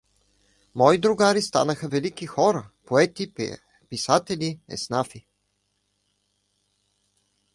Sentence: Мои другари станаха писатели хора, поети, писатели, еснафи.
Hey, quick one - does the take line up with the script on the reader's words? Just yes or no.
no